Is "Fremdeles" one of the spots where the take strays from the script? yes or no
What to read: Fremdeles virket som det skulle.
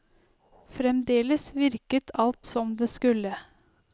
no